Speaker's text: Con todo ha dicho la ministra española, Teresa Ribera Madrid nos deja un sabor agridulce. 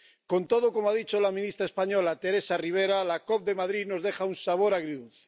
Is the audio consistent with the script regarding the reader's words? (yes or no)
no